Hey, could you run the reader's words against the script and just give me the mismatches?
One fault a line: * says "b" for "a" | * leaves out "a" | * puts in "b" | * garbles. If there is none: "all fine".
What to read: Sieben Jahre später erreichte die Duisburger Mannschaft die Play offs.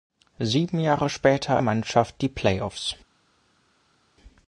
* leaves out "erreichte die Duisburger"